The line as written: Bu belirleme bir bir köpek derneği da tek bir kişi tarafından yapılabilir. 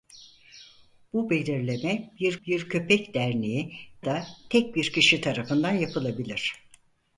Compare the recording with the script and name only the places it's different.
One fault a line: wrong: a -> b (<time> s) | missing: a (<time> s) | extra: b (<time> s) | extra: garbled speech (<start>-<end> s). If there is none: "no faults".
no faults